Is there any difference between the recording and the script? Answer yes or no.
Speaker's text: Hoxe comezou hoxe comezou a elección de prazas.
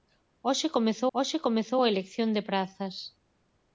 no